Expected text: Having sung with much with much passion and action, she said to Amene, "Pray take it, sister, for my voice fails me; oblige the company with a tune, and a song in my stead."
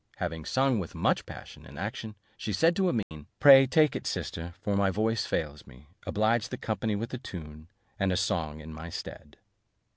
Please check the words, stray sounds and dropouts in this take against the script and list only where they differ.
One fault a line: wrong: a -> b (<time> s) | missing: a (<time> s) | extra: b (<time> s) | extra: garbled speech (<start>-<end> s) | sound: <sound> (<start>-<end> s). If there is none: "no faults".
missing: with much (1.3 s)
sound: dropout (3.0-3.1 s)